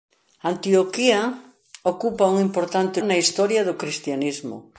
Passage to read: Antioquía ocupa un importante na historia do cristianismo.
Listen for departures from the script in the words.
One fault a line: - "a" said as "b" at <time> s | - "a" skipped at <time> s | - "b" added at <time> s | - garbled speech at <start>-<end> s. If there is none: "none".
none